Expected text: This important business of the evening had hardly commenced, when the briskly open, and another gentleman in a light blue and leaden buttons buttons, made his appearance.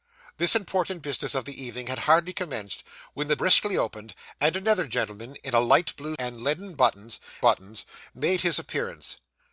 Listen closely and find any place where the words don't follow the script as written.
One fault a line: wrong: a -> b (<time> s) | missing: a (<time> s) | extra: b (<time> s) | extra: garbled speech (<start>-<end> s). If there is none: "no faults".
no faults